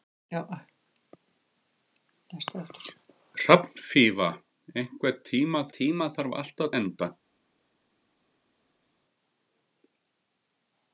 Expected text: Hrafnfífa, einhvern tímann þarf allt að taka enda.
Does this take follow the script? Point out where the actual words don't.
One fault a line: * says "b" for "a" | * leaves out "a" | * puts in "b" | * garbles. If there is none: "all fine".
* puts in "tímann"
* leaves out "taka"